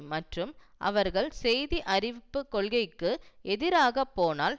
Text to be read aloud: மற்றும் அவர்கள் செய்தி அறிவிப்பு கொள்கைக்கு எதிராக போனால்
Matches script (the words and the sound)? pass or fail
pass